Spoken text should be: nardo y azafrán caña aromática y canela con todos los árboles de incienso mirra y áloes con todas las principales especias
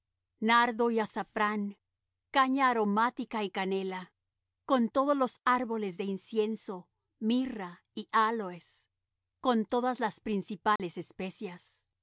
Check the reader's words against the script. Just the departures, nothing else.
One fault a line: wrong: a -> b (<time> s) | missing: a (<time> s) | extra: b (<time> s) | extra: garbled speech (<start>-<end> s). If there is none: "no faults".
no faults